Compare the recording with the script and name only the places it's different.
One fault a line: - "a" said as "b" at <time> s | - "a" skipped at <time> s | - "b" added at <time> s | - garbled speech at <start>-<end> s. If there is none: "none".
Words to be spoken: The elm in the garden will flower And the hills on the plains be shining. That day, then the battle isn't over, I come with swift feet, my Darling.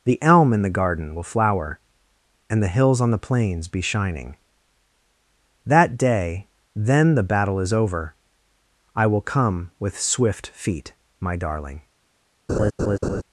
- "isn't" said as "is" at 7.6 s
- "will" added at 9.1 s